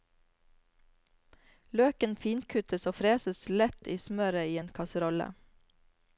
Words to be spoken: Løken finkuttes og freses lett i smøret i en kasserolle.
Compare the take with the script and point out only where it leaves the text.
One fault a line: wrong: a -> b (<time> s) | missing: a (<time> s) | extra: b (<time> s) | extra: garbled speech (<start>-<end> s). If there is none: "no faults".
no faults